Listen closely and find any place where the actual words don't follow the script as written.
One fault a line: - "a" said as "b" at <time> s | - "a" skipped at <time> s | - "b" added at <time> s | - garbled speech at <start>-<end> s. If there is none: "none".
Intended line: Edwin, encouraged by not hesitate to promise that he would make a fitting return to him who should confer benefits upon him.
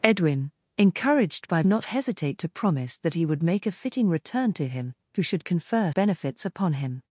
none